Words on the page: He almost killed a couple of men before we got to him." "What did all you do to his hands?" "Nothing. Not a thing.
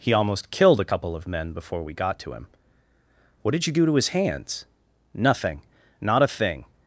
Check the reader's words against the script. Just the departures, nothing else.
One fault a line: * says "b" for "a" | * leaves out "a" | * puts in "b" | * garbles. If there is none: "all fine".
* leaves out "all"